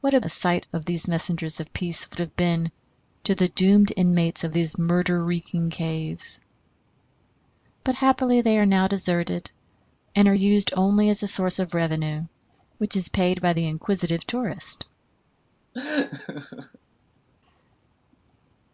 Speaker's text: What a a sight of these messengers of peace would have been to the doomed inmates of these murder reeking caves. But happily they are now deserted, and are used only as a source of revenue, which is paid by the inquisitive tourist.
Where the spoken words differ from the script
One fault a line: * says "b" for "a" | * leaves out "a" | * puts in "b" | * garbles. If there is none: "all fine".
all fine